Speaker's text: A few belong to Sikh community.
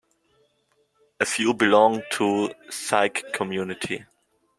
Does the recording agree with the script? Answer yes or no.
yes